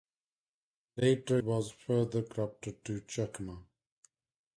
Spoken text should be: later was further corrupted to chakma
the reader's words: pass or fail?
pass